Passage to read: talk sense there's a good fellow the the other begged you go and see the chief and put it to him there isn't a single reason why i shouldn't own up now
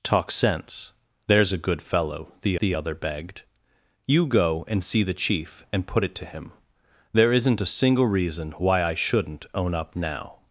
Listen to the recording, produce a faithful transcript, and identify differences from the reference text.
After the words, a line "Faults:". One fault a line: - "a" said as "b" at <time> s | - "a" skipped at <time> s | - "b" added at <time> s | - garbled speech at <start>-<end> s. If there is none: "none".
talk sense there's a good fellow the the other begged you go and see the chief and put it to him there isn't a single reason why i shouldn't own up now
Faults:
none